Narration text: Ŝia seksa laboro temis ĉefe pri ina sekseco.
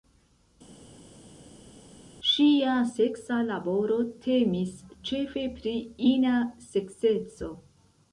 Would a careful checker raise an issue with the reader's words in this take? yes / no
no